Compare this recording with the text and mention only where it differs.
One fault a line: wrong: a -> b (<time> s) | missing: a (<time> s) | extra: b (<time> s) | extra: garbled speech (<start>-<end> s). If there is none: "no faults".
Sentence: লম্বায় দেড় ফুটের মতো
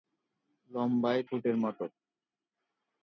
missing: দেড় (1.2 s)